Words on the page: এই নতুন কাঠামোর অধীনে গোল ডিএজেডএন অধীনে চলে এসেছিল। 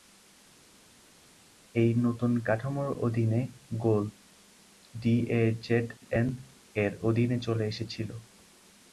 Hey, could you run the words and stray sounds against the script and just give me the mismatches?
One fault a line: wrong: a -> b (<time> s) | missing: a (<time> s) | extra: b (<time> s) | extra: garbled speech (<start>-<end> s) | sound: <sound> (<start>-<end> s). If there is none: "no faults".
extra: এর (6.8 s)